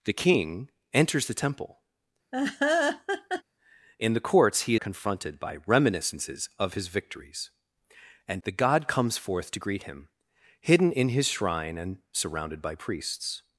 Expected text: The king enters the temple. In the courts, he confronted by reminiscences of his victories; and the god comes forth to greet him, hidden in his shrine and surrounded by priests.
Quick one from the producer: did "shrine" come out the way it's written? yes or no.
yes